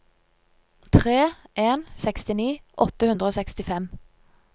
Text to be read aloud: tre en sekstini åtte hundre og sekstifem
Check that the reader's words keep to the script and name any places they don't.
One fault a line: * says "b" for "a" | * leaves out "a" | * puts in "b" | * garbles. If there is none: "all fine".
all fine